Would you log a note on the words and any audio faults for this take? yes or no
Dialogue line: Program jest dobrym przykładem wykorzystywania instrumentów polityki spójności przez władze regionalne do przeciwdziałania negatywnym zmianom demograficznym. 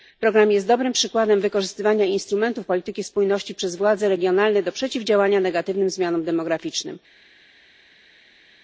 no